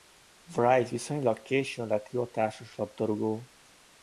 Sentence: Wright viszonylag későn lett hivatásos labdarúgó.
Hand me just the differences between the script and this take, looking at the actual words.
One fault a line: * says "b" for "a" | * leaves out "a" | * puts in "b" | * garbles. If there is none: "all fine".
all fine